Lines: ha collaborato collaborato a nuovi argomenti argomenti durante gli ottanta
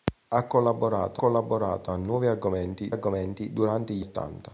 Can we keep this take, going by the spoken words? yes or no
yes